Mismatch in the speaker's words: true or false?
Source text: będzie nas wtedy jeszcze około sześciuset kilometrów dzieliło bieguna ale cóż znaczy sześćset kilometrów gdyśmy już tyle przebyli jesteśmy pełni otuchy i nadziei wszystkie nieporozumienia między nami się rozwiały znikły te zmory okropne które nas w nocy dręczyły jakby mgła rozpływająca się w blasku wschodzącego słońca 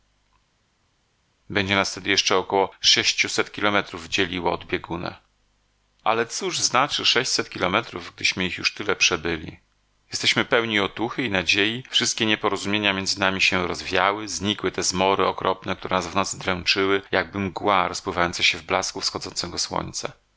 true